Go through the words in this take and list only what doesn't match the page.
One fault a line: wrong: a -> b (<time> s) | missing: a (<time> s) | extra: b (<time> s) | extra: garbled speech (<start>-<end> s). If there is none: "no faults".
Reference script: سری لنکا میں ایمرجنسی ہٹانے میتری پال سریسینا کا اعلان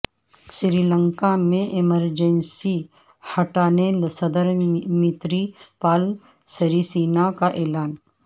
extra: صدر (4.1 s)